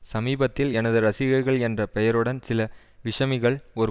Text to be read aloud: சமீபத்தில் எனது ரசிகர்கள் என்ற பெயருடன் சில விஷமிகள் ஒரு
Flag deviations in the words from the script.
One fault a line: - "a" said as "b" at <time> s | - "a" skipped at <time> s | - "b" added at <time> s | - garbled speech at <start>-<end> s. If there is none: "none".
none